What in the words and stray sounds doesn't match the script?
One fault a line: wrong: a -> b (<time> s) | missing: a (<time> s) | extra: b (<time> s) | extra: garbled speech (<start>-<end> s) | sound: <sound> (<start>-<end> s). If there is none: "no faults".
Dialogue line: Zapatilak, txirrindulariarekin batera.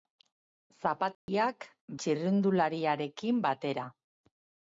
sound: dropout (1.1-1.3 s)